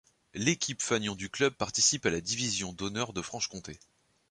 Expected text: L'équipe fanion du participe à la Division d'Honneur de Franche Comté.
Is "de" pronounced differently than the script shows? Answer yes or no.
no